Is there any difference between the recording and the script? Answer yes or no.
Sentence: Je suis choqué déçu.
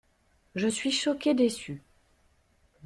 no